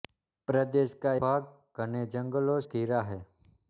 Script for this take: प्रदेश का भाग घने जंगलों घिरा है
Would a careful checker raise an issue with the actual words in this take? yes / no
no